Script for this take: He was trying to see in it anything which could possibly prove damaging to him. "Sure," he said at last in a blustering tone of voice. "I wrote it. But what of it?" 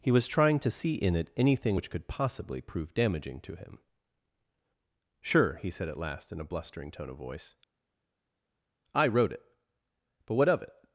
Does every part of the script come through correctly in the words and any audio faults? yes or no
yes